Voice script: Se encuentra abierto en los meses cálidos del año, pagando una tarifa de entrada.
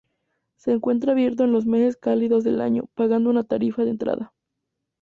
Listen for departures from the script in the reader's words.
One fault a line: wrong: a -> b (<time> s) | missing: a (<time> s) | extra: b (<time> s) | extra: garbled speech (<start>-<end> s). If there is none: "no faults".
no faults